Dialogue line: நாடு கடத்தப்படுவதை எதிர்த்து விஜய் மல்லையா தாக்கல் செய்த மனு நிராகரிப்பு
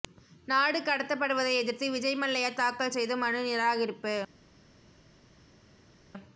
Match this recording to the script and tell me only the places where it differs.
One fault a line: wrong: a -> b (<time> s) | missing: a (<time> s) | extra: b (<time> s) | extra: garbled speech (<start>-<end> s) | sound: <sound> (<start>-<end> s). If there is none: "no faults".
no faults